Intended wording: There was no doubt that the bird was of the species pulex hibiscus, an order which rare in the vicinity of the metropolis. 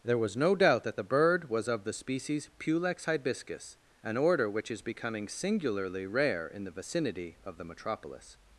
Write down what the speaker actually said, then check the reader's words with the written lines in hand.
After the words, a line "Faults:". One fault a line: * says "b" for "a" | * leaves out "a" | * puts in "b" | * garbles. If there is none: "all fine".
There was no doubt that the bird was of the species pulex hibiscus, an order which is becoming singularly rare in the vicinity of the metropolis.
Faults:
* puts in "is becoming singularly"